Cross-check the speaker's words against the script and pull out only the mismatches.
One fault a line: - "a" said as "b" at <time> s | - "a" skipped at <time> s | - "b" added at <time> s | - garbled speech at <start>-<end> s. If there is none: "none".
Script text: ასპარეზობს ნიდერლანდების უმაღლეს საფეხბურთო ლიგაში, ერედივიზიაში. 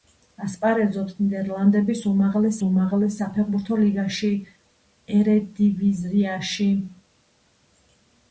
- "უმაღლეს" added at 2.7 s